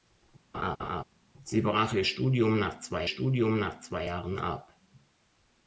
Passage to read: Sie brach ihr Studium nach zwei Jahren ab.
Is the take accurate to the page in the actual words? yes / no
no